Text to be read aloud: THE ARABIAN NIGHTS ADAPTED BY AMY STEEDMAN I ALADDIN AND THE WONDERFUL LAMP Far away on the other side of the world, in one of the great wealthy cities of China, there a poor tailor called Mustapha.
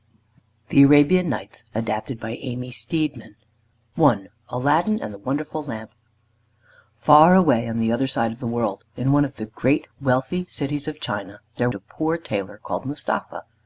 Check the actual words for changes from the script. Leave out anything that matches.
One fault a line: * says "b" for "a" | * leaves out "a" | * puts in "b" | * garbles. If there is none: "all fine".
all fine